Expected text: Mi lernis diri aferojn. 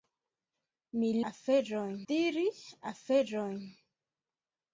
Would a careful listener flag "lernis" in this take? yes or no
yes